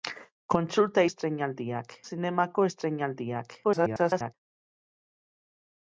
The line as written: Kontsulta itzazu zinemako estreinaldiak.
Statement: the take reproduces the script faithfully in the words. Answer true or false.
false